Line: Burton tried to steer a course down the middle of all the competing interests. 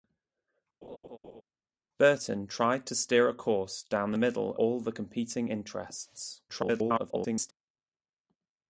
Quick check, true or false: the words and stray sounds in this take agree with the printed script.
false